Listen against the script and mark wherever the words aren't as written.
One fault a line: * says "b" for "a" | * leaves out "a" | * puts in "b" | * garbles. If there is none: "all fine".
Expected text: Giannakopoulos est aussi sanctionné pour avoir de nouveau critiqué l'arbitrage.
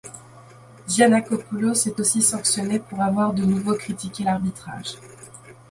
all fine